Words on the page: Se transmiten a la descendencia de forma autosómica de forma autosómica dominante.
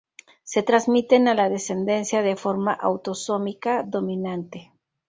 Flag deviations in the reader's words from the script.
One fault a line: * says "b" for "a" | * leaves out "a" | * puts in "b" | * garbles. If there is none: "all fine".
* leaves out "de forma autosómica"